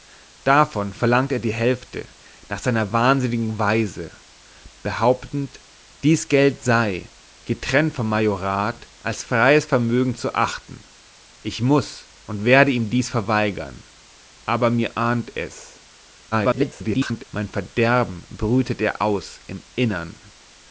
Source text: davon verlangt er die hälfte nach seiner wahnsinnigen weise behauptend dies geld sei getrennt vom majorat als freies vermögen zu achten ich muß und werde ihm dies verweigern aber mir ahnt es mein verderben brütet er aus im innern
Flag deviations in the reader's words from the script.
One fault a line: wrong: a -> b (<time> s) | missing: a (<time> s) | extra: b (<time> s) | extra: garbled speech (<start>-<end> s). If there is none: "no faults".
extra: garbled speech (16.3-17.3 s)